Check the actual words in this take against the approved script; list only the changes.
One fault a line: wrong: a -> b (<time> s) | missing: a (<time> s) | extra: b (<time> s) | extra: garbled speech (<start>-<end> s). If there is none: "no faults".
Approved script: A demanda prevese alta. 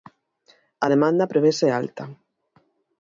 no faults